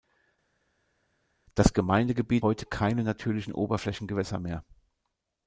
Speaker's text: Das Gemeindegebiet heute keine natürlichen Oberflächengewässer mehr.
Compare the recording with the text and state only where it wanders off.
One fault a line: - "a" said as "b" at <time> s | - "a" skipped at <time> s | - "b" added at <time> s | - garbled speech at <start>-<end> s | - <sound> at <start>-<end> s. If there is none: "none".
none